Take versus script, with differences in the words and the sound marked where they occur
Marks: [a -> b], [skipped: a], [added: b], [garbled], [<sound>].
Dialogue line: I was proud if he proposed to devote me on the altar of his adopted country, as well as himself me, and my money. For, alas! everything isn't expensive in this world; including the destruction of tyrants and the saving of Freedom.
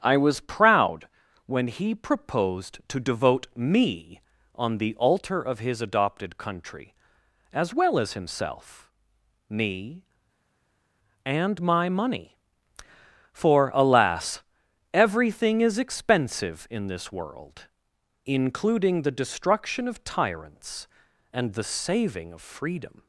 I was proud [if -> when] he proposed to devote me on the altar of his adopted country, as well as himself me, and my money. For, alas! everything [isn't -> is] expensive in this world; including the destruction of tyrants and the saving of Freedom.